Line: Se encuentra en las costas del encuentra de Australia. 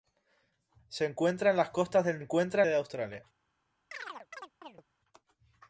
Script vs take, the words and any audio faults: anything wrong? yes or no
yes